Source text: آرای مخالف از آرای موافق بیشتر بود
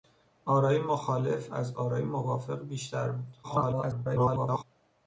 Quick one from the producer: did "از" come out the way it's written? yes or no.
yes